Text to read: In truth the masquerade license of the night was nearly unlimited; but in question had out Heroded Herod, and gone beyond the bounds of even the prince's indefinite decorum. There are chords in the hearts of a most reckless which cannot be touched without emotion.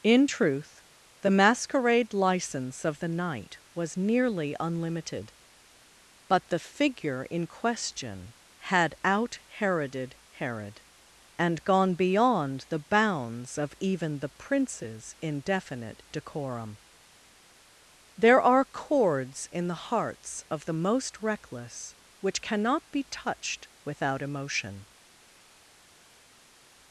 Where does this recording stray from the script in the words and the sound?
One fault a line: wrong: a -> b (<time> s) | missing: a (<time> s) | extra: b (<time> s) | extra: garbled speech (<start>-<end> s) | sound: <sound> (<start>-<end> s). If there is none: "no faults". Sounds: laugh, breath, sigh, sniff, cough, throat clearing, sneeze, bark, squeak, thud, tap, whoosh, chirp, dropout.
extra: the figure (6.5 s)
wrong: a -> the (20.6 s)